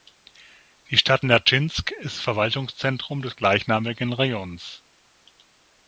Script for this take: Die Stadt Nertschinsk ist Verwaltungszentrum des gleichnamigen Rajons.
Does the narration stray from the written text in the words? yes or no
no